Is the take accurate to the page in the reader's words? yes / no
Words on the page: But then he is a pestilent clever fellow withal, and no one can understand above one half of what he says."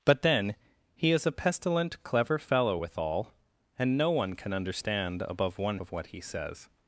no